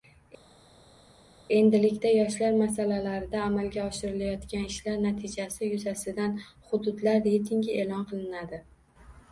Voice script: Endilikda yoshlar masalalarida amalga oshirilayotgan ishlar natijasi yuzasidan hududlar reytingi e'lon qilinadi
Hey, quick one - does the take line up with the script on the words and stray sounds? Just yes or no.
yes